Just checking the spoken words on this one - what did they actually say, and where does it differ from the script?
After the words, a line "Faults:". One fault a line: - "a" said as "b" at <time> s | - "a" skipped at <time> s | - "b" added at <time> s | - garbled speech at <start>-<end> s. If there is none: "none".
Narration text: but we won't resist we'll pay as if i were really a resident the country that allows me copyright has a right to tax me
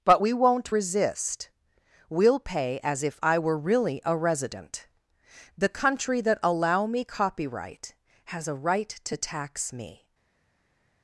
but we won't resist we'll pay as if i were really a resident the country that allow me copyright has a right to tax me
Faults:
- "allows" said as "allow" at 6.4 s